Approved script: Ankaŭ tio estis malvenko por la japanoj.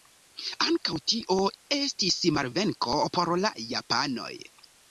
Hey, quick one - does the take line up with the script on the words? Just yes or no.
yes